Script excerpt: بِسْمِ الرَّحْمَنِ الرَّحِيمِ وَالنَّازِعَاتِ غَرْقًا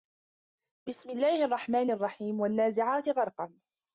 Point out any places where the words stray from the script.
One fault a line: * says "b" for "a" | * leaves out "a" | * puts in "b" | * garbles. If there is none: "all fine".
* puts in "اللَّهِ"